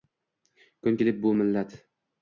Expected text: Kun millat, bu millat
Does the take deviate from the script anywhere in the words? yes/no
yes